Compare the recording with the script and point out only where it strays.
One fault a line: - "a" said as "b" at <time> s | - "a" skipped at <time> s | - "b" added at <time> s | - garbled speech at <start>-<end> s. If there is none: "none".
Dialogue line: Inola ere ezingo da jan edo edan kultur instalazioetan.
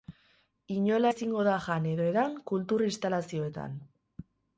- "ere" skipped at 1.1 s